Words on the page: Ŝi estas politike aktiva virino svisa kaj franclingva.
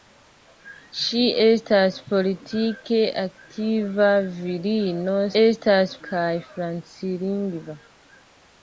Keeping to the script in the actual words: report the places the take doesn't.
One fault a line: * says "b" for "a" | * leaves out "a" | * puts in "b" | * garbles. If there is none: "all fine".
* says "estas" for "svisa"